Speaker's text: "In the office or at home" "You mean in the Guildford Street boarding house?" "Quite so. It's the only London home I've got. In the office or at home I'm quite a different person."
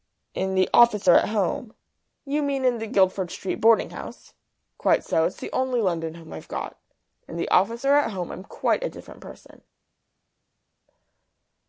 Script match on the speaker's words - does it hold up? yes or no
yes